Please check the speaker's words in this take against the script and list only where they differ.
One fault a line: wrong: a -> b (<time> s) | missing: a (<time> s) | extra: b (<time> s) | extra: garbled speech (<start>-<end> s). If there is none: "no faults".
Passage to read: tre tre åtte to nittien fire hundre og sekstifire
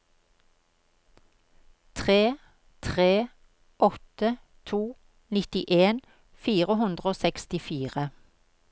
no faults